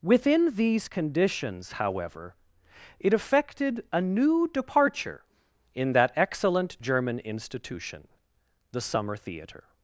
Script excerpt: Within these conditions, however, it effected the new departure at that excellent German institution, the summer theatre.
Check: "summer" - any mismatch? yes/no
no